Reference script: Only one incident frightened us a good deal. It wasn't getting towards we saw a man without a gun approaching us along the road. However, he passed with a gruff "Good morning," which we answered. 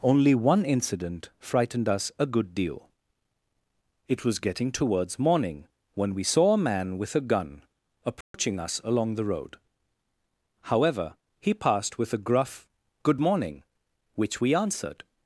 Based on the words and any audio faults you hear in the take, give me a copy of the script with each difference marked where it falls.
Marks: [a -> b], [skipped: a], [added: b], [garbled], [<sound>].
Only one incident frightened us a good deal. It [wasn't -> was] getting towards [added: morning when] we saw a man [without -> with] a gun approaching [dropout] us along the road. However, he passed with a gruff "Good morning," which we answered.